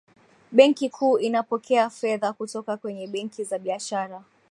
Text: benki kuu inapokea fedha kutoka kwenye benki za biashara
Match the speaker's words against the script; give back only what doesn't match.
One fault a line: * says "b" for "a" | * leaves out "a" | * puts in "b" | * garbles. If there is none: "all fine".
all fine